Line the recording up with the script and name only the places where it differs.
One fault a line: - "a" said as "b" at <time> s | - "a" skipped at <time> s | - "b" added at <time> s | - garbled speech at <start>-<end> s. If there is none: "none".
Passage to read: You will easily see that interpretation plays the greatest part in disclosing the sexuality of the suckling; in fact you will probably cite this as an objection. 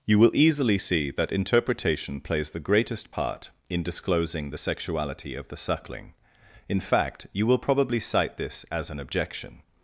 none